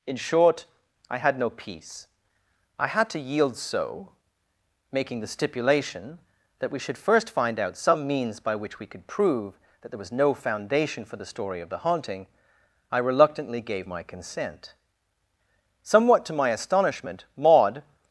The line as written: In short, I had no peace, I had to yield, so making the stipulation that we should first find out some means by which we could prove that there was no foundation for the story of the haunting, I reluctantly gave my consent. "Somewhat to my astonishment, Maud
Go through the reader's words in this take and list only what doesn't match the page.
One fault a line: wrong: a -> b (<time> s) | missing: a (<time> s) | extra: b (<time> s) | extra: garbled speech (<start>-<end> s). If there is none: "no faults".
no faults